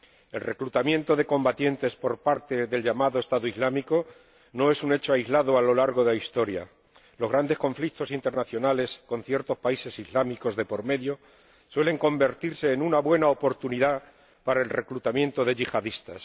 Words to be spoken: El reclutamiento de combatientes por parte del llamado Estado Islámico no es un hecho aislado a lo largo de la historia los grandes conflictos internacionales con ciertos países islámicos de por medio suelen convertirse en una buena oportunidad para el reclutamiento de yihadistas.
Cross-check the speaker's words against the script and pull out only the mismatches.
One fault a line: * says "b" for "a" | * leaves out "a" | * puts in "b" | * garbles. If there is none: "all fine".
all fine